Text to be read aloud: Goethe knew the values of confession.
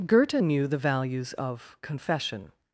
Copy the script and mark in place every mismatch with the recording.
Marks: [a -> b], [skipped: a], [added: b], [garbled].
Goethe knew the values of confession.